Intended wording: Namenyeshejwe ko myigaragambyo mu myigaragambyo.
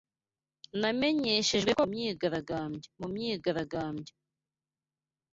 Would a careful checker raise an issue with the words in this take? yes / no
no